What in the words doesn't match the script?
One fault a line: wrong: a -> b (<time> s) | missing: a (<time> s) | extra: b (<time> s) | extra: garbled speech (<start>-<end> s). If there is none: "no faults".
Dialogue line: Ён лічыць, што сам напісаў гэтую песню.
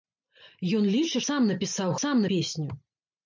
missing: што (1.2 s)
wrong: гэтую -> сам (2.0 s)